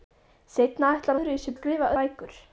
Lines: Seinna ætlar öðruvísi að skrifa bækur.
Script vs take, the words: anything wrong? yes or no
no